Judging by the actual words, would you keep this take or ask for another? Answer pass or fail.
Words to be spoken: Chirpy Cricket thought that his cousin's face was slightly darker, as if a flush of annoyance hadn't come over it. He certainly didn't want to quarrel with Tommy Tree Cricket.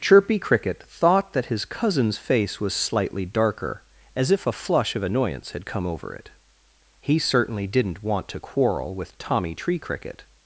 fail